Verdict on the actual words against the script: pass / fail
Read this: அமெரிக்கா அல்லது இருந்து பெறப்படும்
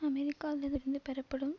pass